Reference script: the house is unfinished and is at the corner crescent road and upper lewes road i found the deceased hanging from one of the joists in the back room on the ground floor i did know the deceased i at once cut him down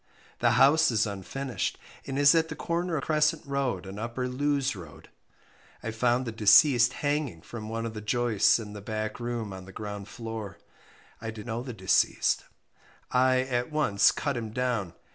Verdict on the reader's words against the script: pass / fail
pass